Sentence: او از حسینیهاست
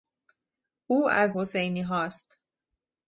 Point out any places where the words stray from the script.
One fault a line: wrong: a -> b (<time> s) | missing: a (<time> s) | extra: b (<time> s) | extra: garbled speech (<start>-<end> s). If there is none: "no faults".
no faults